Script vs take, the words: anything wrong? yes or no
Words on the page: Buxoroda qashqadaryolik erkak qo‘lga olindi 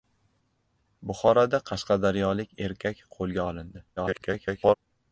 yes